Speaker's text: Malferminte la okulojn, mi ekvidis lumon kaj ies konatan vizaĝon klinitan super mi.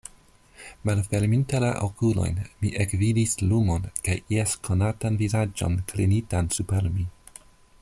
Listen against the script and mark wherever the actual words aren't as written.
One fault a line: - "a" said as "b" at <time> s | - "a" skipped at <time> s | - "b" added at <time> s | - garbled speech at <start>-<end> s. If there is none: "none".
none